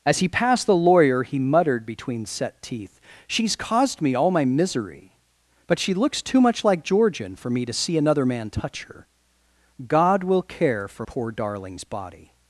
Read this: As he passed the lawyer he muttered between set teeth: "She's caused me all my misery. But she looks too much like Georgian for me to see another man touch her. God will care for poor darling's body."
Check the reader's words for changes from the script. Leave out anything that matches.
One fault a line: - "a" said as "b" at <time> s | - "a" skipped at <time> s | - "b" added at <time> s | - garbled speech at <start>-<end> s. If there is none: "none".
none